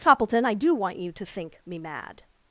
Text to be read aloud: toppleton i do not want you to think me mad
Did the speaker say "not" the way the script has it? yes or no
no